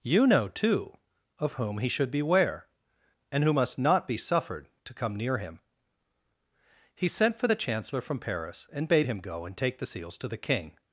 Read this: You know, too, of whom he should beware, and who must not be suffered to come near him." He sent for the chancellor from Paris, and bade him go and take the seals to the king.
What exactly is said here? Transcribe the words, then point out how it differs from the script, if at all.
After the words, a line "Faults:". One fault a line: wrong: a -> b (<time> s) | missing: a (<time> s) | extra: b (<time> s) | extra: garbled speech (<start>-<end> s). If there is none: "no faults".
You know, too, of whom he should beware, and who must not be suffered to come near him." He sent for the chancellor from Paris, and bade him go and take the seals to the king.
Faults:
no faults